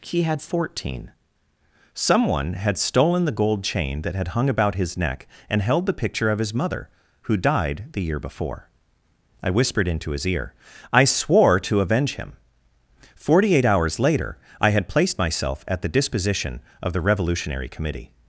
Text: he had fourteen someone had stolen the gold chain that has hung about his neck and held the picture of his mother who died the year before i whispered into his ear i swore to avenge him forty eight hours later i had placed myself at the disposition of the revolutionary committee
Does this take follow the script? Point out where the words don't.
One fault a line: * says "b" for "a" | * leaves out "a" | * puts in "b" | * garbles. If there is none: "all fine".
* says "had" for "has"